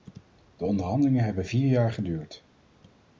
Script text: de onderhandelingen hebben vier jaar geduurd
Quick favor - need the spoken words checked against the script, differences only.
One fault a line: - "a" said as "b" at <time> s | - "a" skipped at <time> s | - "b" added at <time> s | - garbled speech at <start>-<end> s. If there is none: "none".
none